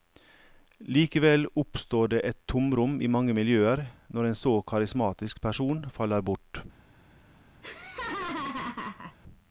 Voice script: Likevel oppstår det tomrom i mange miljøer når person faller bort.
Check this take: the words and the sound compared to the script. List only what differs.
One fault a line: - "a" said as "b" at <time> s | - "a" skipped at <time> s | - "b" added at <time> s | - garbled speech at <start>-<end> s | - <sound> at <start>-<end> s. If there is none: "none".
- "et" added at 2.2 s
- "en så karismatisk" added at 4.3 s
- laugh at 7.6-9.2 s